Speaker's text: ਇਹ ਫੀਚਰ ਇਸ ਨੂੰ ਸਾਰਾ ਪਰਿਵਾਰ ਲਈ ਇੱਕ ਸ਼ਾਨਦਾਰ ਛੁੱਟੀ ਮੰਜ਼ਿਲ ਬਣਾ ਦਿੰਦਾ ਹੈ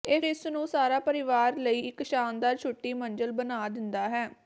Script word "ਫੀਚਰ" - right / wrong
wrong